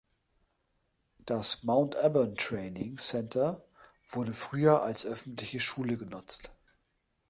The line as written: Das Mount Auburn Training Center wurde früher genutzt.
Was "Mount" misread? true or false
false